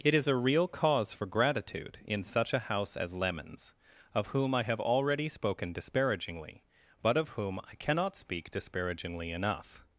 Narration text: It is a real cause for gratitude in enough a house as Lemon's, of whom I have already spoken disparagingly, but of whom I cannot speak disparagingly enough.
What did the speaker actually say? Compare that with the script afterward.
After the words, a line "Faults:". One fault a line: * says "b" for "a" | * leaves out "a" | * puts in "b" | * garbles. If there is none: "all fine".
It is a real cause for gratitude in such a house as Lemon's, of whom I have already spoken disparagingly, but of whom I cannot speak disparagingly enough.
Faults:
* says "such" for "enough"